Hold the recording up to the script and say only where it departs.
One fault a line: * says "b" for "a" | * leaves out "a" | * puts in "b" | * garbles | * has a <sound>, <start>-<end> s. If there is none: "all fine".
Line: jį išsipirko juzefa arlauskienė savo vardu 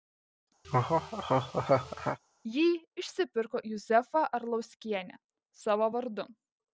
* has a laugh, 0.6-2.2 s